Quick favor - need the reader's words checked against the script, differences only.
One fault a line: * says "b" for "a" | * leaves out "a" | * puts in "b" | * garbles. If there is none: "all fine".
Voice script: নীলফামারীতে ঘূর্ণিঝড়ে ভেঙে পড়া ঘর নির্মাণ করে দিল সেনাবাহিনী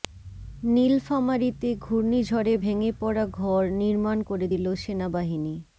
all fine